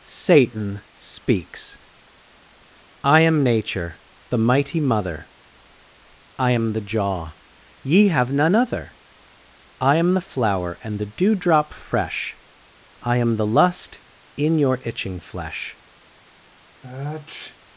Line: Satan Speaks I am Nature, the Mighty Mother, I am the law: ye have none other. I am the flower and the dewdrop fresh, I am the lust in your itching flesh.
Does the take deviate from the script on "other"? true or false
false